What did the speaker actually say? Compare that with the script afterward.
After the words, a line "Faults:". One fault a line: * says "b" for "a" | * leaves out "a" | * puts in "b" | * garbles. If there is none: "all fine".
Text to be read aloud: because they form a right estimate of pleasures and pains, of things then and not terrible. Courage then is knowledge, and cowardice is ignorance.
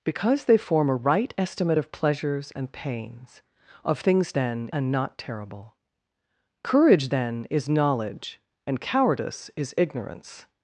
because they form a right estimate of pleasures and pains, of things then and not terrible. Courage then is knowledge, and cowardice is ignorance.
Faults:
all fine